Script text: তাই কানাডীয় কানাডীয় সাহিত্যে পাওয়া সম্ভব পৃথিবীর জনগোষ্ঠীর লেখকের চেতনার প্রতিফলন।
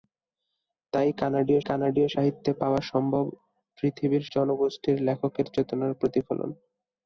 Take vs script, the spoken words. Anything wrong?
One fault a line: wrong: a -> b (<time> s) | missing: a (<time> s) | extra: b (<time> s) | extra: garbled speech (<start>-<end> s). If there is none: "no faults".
no faults